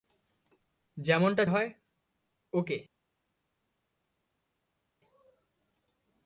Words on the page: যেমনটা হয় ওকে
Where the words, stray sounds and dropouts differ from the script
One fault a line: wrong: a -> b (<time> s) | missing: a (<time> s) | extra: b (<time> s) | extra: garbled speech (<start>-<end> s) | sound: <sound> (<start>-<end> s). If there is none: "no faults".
no faults